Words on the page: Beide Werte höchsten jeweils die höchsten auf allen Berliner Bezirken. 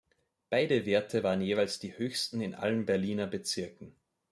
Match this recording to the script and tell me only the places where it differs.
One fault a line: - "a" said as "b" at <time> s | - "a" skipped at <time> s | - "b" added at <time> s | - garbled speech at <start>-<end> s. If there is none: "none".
- "höchsten" said as "waren" at 1.2 s
- "auf" said as "in" at 2.4 s